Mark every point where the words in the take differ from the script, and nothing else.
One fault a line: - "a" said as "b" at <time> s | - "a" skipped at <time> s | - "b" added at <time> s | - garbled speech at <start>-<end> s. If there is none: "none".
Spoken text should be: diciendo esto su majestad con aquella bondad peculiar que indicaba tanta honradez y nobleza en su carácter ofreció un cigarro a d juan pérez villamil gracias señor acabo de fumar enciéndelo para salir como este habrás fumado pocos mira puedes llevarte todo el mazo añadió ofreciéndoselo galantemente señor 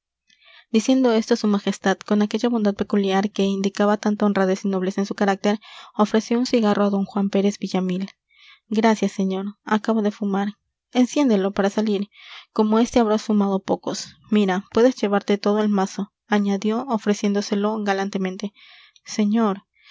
none